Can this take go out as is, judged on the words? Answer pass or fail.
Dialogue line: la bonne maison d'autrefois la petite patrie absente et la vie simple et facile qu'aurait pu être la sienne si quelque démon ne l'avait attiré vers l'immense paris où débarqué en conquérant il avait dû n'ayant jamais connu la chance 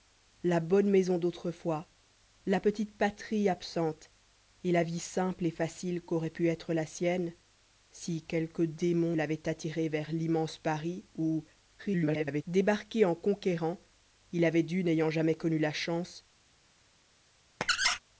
fail